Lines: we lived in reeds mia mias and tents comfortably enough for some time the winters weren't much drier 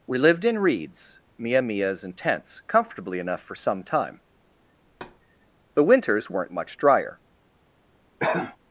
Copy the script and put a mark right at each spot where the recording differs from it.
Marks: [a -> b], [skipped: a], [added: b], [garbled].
we lived in reeds mia mias and tents comfortably enough for some time the winters weren't much drier